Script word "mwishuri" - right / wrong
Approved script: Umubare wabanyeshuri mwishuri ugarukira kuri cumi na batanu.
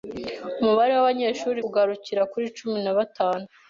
wrong